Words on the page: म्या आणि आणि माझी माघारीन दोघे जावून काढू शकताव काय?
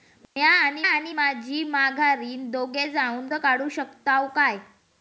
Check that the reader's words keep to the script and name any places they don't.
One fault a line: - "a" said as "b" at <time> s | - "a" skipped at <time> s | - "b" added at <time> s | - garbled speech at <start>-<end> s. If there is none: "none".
none